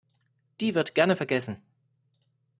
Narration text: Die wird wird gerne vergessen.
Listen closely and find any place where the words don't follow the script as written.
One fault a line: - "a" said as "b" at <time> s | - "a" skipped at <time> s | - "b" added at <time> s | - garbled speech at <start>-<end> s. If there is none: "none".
- "wird" skipped at 0.9 s